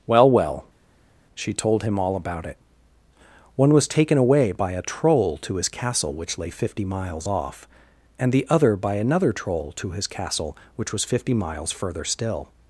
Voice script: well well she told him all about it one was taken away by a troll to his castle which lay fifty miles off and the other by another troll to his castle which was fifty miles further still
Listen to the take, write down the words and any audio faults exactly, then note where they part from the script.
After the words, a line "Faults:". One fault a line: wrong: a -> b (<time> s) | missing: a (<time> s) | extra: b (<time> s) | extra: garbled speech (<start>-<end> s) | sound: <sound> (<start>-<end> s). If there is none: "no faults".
well well she told him all about it one was taken away by a troll to his castle which lay fifty miles off and the other by another troll to his castle which was fifty miles further still
Faults:
no faults